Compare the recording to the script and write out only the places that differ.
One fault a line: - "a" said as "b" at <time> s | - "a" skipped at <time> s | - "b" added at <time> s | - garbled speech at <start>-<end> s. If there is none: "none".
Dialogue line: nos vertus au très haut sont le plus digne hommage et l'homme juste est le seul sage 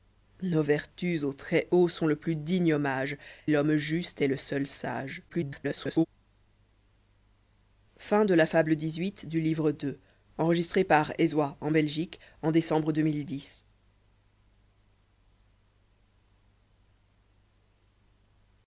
- "et" skipped at 3.2 s
- garbled speech at 5.3-6.1 s